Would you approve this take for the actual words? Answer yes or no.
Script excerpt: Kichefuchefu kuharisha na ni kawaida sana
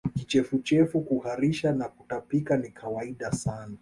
no